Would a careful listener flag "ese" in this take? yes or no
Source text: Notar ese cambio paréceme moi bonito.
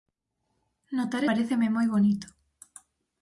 yes